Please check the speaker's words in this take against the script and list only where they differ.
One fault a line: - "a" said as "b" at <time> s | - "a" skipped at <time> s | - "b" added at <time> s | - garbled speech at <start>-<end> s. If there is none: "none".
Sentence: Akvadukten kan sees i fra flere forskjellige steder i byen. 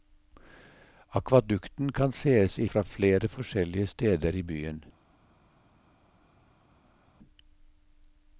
none